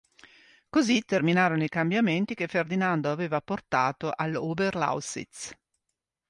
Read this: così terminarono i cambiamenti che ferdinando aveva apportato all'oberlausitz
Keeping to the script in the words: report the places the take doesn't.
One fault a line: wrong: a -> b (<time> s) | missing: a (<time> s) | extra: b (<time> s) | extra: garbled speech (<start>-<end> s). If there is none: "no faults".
no faults